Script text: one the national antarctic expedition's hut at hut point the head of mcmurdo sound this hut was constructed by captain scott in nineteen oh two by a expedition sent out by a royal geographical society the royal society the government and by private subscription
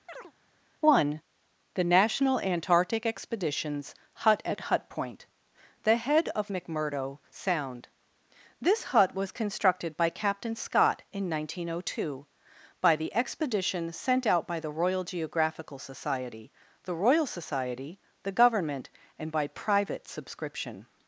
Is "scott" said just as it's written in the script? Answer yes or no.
yes